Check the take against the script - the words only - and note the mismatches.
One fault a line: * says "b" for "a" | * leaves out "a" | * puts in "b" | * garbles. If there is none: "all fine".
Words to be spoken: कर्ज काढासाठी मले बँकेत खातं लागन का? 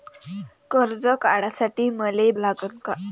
* leaves out "बँकेत खातं"